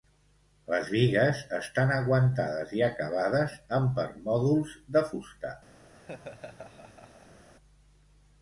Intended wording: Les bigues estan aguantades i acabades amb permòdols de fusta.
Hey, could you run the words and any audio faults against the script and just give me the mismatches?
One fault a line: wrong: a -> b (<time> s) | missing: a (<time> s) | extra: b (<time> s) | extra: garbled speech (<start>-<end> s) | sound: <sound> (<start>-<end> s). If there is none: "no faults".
sound: laugh (5.9-7.5 s)